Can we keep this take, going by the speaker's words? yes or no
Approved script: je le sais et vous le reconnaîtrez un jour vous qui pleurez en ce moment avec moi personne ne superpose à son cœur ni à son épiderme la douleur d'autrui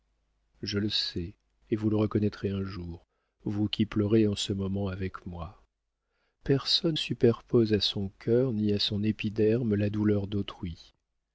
no